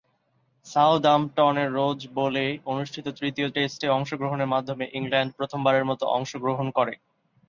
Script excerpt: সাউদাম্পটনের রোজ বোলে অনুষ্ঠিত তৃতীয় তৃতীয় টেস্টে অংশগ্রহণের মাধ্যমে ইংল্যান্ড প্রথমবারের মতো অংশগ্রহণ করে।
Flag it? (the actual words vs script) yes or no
yes